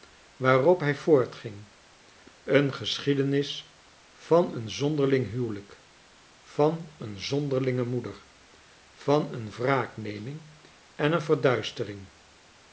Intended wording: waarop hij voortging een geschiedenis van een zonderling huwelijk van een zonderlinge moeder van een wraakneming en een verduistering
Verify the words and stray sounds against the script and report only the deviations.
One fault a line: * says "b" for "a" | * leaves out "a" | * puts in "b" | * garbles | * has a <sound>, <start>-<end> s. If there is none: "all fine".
all fine